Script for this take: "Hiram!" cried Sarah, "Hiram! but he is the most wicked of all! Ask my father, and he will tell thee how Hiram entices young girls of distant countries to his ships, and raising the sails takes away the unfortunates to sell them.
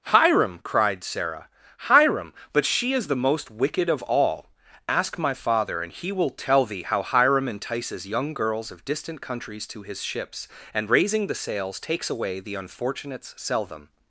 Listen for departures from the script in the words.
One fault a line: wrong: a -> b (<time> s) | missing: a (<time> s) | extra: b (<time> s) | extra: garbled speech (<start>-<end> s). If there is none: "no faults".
wrong: he -> she (2.6 s)
missing: to (13.3 s)